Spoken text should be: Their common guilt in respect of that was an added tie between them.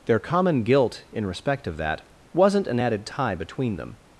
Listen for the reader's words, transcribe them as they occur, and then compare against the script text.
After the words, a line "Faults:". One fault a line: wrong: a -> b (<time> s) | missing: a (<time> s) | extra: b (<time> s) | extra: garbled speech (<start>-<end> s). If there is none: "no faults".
Their common guilt in respect of that wasn't an added tie between them.
Faults:
wrong: was -> wasn't (2.3 s)